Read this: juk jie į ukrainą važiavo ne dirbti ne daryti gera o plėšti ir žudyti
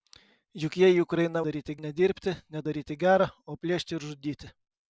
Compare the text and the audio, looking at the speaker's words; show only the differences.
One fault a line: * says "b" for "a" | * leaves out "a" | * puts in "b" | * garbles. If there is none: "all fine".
* says "daryti" for "važiavo"